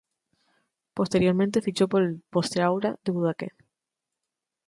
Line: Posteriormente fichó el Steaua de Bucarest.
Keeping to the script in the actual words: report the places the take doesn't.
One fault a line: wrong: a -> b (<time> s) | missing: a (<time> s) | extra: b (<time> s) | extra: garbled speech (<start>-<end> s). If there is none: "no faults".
extra: por (1.9 s)